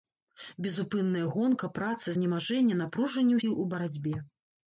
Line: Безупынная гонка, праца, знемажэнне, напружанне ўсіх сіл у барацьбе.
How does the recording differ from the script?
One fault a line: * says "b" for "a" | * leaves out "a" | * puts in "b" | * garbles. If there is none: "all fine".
* leaves out "ўсіх"